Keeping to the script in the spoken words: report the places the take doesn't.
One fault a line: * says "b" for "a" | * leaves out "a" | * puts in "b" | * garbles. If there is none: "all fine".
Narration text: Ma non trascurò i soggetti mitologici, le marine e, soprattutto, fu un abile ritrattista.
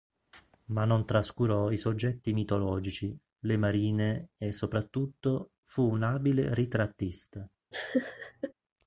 all fine